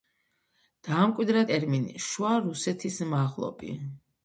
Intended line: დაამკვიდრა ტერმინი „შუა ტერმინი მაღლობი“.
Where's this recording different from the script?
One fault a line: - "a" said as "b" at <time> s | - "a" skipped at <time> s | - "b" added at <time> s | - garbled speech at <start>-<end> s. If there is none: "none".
- "ტერმინი" said as "რუსეთის" at 2.5 s